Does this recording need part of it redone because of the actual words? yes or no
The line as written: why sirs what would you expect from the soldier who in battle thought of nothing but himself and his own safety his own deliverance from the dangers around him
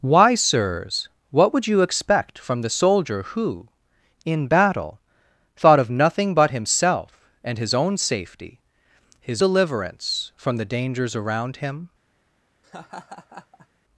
yes